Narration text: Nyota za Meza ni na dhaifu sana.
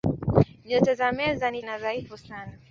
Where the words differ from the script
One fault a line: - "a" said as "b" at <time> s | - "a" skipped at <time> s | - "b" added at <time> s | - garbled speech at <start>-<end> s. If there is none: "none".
none